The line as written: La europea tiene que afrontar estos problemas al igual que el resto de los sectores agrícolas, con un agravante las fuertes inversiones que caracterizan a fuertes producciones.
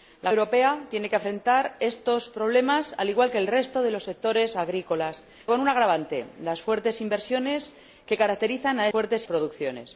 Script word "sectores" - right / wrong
right